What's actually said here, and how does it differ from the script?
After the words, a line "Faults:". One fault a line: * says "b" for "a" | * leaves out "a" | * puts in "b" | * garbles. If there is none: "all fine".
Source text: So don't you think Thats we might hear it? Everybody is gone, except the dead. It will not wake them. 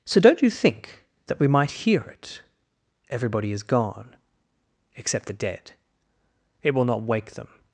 So don't you think That we might hear it? Everybody is gone, except the dead. It will not wake them.
Faults:
* says "That" for "Thats"